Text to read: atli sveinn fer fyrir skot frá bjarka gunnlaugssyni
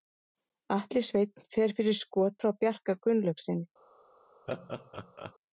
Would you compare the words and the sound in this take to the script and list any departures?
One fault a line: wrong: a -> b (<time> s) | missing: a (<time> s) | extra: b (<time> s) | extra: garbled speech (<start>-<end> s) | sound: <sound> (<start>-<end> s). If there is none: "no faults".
sound: laugh (4.5-5.3 s)